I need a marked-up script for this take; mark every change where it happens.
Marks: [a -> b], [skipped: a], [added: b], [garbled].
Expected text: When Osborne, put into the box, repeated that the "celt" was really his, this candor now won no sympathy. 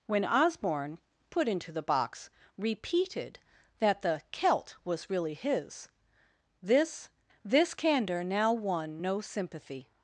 When Osborne, put into the box, repeated that the "celt" was really his, this [added: this] candor now won no sympathy.